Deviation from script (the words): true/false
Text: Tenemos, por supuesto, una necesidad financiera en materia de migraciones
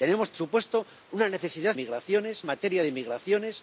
true